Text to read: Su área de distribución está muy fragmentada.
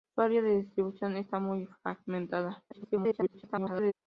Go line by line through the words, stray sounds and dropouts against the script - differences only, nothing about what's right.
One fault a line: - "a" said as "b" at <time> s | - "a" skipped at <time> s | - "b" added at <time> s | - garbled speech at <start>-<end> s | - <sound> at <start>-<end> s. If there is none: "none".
- garbled speech at 2.7-3.9 s